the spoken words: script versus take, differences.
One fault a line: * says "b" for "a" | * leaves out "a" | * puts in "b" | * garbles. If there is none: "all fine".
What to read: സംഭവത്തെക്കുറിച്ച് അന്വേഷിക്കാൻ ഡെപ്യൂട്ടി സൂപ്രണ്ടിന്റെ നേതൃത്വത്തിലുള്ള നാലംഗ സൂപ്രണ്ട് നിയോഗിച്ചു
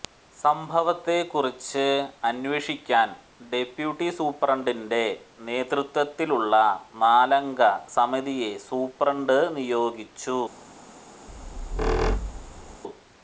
* puts in "സമിതിയെ"